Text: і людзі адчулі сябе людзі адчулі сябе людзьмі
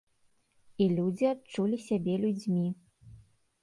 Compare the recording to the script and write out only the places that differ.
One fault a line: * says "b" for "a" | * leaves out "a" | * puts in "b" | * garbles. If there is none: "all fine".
* leaves out "людзі адчулі сябе"